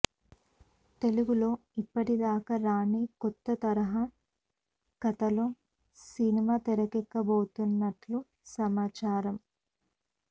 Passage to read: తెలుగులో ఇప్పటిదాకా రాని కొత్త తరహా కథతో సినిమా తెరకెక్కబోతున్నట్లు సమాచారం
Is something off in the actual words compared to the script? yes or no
no